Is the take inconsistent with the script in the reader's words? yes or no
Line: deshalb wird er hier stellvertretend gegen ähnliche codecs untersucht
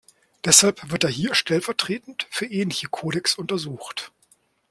yes